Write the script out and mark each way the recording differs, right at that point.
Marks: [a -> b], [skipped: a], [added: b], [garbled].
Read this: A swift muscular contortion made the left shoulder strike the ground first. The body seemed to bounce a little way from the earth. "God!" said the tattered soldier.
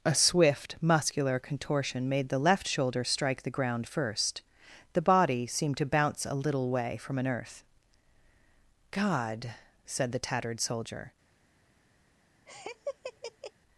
A swift muscular contortion made the left shoulder strike the ground first. The body seemed to bounce a little way from [the -> an] earth. "God!" said the tattered soldier.